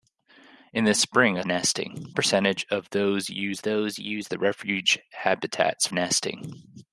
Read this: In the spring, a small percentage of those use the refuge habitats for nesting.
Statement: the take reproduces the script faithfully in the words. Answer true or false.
false